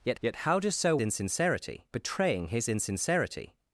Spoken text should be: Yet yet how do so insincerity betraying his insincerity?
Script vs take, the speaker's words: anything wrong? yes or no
no